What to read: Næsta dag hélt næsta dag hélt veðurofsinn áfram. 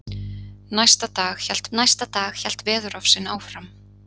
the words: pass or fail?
pass